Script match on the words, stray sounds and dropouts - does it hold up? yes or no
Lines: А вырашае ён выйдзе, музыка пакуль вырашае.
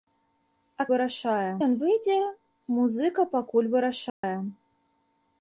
no